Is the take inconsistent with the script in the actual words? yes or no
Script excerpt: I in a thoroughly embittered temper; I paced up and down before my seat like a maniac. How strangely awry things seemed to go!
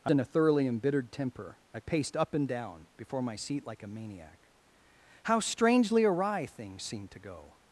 no